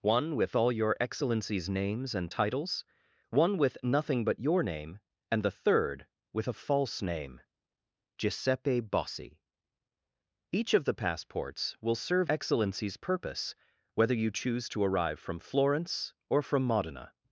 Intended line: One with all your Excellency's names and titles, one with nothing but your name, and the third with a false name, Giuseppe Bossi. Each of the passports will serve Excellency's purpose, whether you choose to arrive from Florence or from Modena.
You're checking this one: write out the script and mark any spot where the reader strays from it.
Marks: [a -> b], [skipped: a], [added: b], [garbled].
One with all your Excellency's names and titles, one with nothing but your name, and the third with a false name, Giuseppe Bossi. Each of the passports will serve Excellency's purpose, whether you choose to arrive from Florence or from Modena.